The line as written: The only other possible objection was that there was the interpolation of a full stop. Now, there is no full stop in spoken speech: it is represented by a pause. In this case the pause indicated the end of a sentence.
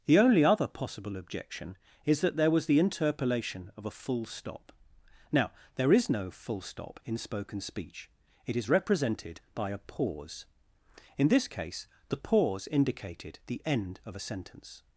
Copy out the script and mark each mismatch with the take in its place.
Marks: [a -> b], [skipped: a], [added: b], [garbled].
The only other possible objection [was -> is] that there was the interpolation of a full stop. Now, there is no full stop in spoken speech: it is represented by a pause. In this case the pause indicated the end of a sentence.